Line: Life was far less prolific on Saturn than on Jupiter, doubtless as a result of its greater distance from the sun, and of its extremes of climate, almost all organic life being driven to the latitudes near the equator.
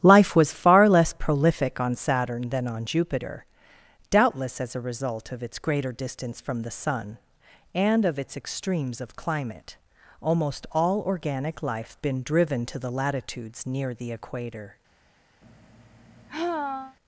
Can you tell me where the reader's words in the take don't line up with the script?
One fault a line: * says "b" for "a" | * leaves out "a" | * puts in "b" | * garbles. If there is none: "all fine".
* says "been" for "being"